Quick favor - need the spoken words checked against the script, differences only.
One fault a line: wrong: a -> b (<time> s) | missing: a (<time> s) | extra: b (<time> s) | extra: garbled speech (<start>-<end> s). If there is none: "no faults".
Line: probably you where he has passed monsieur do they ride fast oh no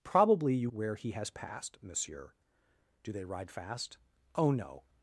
no faults